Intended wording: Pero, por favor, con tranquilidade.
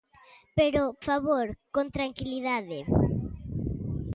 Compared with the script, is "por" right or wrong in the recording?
wrong